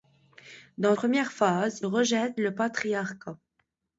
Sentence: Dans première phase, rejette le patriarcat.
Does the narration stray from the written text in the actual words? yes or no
no